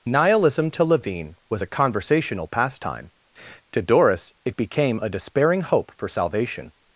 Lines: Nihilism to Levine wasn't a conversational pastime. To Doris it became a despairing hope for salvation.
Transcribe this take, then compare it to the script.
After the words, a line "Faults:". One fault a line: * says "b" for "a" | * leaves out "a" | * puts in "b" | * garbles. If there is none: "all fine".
Nihilism to Levine was a conversational pastime. To Doris it became a despairing hope for salvation.
Faults:
* says "was" for "wasn't"